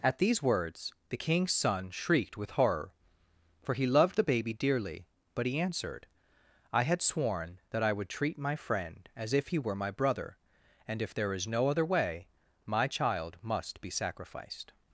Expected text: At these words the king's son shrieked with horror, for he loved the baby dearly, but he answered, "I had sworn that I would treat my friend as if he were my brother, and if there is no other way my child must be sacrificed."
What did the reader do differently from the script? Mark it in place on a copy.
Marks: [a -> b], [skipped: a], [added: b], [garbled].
At these words the king's son shrieked with horror, for he loved the baby dearly, but he answered, "I had sworn that I would treat my friend as if he were my brother, and if there is no other way my child must be sacrificed."